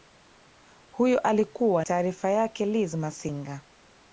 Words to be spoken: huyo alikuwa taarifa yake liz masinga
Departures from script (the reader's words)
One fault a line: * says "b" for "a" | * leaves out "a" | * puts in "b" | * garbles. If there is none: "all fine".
all fine